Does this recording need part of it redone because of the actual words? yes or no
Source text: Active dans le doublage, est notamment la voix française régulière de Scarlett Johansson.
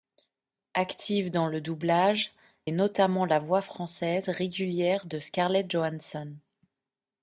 no